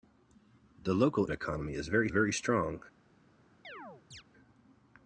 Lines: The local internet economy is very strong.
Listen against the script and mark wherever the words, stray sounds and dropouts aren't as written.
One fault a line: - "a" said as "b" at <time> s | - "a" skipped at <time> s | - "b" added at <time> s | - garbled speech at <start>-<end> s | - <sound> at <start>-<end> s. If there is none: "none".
- "internet" skipped at 1.3 s
- "very" added at 2.1 s
- chirp at 3.6-4.2 s